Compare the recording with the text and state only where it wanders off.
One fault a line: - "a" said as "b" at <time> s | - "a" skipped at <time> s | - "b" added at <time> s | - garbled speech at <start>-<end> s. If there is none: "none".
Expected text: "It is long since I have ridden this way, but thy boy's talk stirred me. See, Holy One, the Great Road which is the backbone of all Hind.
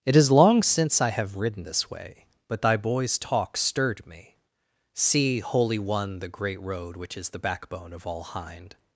none